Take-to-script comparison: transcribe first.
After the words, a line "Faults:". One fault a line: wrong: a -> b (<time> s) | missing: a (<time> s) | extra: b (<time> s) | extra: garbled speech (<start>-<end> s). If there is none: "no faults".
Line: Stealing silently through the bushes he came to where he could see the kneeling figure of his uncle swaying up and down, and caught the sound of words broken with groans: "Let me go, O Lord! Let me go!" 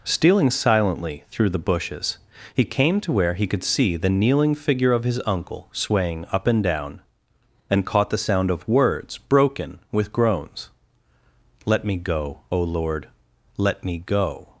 Stealing silently through the bushes he came to where he could see the kneeling figure of his uncle swaying up and down, and caught the sound of words broken with groans: "Let me go, O Lord! Let me go!"
Faults:
no faults